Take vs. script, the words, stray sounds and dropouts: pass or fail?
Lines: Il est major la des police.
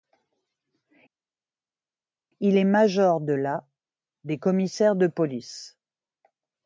fail